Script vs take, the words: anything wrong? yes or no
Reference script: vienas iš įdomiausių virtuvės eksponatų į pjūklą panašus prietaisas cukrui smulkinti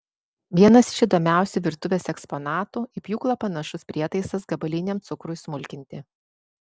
yes